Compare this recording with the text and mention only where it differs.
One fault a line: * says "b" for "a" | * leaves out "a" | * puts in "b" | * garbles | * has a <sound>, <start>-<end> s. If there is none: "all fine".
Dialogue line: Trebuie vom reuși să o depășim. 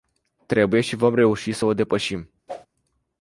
* puts in "și"
* has a whoosh, 2.5-2.7 s